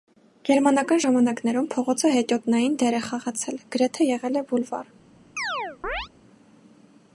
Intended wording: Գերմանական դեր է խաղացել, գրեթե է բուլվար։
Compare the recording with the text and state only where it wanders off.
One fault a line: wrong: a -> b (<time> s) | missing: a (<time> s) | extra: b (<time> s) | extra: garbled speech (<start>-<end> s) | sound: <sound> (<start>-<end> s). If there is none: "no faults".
extra: ժամանակներում փողոցը հետիոտնային (1.0 s)
extra: եղել (4.1 s)
sound: chirp (5.4-6.1 s)